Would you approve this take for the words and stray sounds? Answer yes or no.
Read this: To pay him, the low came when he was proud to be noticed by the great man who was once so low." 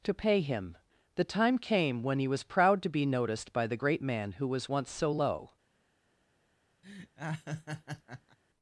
no